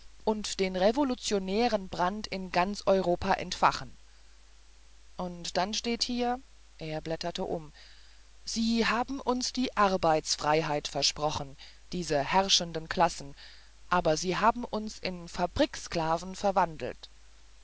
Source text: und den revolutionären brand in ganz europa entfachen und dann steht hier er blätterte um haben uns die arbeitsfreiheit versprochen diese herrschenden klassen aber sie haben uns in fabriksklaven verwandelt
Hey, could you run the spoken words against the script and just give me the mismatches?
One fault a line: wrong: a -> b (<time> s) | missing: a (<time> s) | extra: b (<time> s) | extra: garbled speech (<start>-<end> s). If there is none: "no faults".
extra: sie (8.4 s)